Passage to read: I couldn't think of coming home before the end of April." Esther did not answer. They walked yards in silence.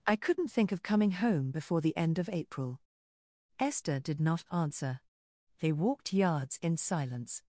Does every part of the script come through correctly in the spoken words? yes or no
yes